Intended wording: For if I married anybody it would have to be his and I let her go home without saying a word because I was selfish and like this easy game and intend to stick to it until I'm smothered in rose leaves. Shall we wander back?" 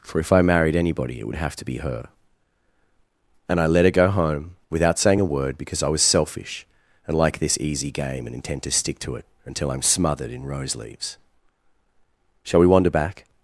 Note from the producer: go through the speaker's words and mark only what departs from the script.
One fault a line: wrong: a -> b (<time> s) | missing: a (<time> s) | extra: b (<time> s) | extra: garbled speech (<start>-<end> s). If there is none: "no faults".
wrong: his -> her (1.8 s)